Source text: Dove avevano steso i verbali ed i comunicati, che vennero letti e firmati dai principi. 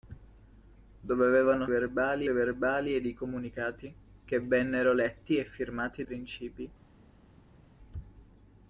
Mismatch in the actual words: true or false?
true